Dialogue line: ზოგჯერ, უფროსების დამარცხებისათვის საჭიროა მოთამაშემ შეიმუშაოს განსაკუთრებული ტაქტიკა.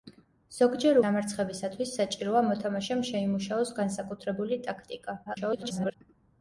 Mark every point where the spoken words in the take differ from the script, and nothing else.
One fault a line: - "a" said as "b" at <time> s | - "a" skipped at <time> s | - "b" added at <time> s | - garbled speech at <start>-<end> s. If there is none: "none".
- "უფროსების" skipped at 1.0 s
- garbled speech at 5.3-5.9 s